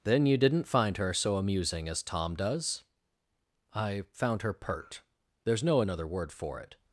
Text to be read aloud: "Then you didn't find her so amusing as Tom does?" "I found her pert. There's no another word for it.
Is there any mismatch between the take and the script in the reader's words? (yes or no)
no